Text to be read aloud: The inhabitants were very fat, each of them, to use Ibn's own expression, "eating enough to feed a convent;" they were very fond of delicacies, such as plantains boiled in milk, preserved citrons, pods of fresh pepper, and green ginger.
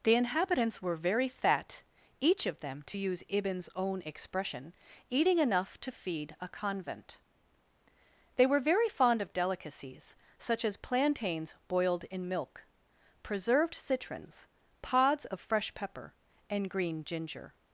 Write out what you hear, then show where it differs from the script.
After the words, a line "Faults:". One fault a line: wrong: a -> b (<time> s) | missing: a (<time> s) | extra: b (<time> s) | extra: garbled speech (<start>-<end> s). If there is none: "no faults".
The inhabitants were very fat, each of them, to use Ibn's own expression, "eating enough to feed a convent;" they were very fond of delicacies, such as plantains boiled in milk, preserved citrons, pods of fresh pepper, and green ginger.
Faults:
no faults